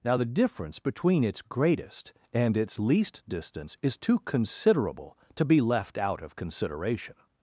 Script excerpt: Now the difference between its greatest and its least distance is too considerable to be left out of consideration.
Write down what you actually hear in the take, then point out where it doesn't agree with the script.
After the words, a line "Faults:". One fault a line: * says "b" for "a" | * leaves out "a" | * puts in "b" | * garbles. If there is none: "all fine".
Now the difference between its greatest and its least distance is too considerable to be left out of consideration.
Faults:
all fine